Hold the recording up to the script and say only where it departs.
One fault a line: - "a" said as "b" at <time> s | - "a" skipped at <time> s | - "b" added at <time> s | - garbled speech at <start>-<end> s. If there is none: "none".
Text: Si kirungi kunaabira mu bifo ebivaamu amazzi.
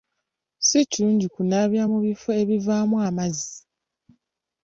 none